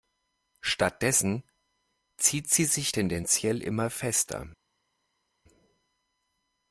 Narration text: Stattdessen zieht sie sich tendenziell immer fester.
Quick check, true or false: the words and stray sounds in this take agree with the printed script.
true